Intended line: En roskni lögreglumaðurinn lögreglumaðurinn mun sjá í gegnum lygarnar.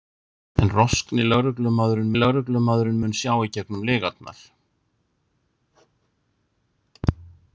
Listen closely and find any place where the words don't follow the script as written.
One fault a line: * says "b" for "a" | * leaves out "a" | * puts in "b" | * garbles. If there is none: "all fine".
all fine